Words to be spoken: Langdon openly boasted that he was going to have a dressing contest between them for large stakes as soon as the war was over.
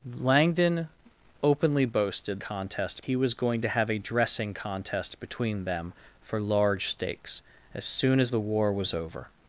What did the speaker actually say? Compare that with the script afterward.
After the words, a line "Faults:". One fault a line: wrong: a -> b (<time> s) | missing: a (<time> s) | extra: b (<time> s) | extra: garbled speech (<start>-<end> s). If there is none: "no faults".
Langdon openly boasted contest he was going to have a dressing contest between them for large stakes as soon as the war was over.
Faults:
wrong: that -> contest (2.4 s)